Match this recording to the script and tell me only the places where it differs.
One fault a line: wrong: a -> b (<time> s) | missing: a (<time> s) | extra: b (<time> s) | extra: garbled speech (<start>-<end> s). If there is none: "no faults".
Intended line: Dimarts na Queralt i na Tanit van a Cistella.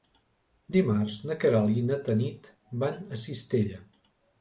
no faults